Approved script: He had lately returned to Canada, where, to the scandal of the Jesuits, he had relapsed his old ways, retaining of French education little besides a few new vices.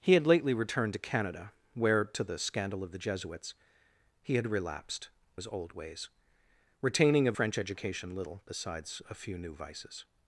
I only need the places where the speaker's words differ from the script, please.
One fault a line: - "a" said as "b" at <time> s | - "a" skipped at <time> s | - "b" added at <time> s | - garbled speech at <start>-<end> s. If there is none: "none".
none